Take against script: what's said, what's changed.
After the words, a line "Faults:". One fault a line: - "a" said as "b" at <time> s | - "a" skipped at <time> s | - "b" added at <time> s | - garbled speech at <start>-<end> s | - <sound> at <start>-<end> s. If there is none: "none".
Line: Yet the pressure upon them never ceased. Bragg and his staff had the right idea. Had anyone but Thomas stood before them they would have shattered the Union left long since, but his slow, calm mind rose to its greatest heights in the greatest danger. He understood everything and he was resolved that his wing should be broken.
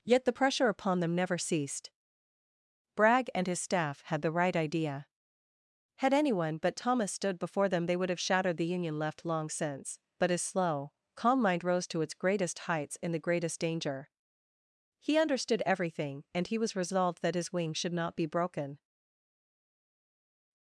Yet the pressure upon them never ceased. Bragg and his staff had the right idea. Had anyone but Thomas stood before them they would have shattered the Union left long since, but his slow, calm mind rose to its greatest heights in the greatest danger. He understood everything and he was resolved that his wing should not be broken.
Faults:
- "not" added at 17.9 s